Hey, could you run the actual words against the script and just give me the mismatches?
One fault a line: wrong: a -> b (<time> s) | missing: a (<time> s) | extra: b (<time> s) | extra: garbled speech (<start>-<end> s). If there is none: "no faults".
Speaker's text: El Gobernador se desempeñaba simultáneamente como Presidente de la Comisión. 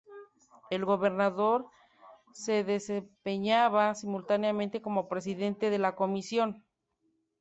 no faults